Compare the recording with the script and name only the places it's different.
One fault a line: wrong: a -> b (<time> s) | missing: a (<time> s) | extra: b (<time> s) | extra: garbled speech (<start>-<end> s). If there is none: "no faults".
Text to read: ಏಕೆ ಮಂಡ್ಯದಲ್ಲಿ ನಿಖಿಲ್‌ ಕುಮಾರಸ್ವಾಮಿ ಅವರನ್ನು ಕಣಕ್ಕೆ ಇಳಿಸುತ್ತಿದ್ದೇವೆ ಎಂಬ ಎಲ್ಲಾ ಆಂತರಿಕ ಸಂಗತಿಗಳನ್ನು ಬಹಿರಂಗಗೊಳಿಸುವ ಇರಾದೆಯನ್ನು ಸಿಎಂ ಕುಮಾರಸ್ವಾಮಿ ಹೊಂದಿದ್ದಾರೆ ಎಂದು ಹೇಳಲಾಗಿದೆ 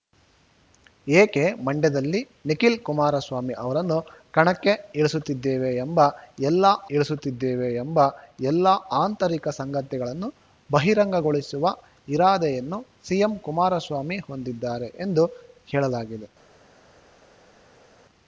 extra: ಇಳಿಸುತ್ತಿದ್ದೇವೆ ಎಂಬ ಎಲ್ಲಾ (6.9 s)